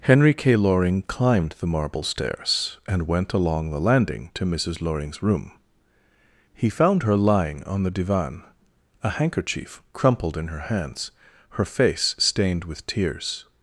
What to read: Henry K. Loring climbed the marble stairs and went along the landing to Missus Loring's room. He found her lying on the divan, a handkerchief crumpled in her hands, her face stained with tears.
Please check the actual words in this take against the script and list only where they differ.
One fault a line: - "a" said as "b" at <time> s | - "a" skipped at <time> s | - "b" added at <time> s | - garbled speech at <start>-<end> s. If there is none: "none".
none